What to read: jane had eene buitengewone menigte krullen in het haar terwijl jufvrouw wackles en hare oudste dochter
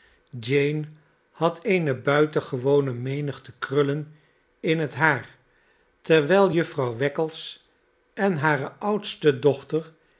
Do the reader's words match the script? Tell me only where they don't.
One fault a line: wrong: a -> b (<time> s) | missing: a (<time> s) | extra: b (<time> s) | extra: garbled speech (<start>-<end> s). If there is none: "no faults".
no faults